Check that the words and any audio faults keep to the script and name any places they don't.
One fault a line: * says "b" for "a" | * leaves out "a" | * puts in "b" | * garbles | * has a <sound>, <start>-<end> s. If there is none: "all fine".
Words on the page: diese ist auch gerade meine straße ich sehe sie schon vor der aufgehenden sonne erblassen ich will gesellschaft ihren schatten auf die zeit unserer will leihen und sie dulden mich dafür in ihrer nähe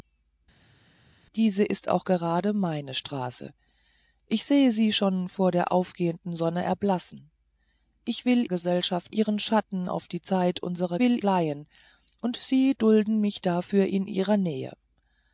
all fine